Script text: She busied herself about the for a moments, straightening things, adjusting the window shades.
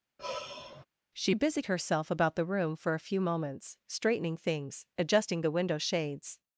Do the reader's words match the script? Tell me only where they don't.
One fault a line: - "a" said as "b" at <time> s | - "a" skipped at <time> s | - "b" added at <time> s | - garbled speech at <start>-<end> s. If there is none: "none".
- "room" added at 2.4 s
- "few" added at 3.0 s